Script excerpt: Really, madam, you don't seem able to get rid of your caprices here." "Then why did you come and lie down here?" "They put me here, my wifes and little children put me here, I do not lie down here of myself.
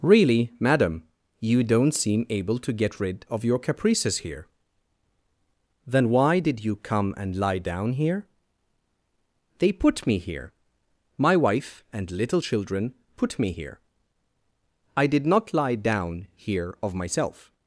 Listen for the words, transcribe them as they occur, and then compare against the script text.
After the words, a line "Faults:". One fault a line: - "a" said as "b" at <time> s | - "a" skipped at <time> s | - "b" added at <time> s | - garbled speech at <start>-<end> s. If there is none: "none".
Really, madam, you don't seem able to get rid of your caprices here." "Then why did you come and lie down here?" "They put me here, my wife and little children put me here, I did not lie down here of myself.
Faults:
- "wifes" said as "wife" at 11.4 s
- "do" said as "did" at 15.1 s